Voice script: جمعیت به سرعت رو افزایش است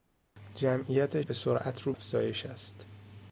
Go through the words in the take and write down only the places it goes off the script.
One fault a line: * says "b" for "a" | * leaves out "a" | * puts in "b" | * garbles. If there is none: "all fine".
all fine